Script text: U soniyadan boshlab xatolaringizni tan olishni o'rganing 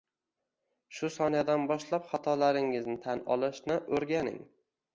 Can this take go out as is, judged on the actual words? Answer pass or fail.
fail